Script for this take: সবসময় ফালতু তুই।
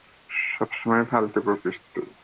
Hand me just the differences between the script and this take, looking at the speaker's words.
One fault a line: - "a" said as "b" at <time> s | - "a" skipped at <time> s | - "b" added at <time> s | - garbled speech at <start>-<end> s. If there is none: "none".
- "বকিস" added at 1.5 s